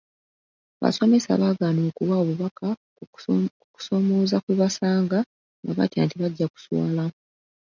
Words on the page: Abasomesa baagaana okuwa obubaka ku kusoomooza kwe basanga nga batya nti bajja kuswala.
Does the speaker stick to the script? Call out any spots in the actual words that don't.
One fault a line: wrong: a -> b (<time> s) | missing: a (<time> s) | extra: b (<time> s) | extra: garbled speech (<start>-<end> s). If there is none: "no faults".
no faults